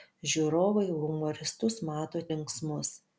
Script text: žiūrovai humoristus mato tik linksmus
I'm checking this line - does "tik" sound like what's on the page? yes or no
no